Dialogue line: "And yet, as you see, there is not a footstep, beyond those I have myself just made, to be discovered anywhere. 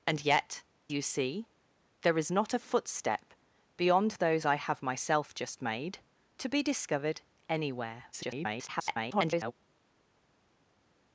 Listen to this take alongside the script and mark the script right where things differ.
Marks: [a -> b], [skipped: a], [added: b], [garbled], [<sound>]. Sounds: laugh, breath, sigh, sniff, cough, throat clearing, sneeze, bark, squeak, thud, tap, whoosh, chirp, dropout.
"And yet, [skipped: as] you see, there is not a footstep, beyond those I have myself just made, to be discovered anywhere. [garbled]